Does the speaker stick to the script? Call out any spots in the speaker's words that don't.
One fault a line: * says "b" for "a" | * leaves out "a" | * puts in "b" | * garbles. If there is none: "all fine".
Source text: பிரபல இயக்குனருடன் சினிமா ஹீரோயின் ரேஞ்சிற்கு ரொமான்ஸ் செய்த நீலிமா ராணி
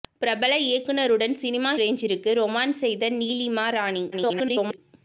* leaves out "ஹீரோயின்"
* garbles